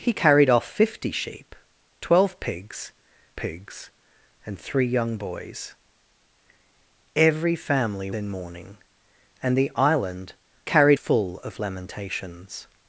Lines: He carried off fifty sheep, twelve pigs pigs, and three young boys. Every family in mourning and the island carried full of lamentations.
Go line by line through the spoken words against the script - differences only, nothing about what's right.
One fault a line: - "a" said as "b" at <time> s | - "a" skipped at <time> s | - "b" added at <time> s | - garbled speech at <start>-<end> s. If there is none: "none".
none